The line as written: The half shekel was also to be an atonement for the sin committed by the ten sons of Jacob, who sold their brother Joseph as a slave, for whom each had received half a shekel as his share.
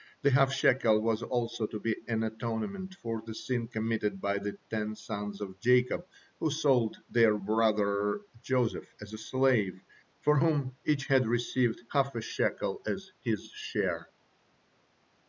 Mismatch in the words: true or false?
false